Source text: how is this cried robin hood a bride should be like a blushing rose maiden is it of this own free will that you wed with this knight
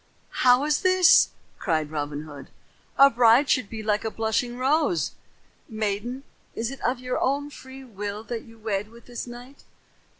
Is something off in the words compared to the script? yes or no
yes